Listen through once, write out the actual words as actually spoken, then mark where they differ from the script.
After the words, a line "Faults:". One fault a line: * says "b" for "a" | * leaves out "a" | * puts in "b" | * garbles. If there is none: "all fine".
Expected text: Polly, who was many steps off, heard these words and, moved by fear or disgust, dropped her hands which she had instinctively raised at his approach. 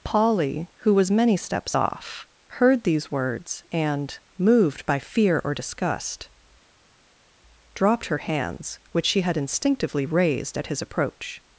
Polly, who was many steps off, heard these words and, moved by fear or disgust, dropped her hands which she had instinctively raised at his approach.
Faults:
all fine